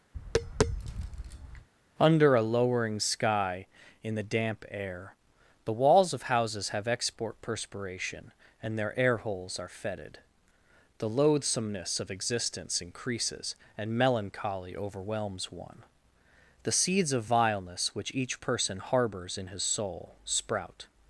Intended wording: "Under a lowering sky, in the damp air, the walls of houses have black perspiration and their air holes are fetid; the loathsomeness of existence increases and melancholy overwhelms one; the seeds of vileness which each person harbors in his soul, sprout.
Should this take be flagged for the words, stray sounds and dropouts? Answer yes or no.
yes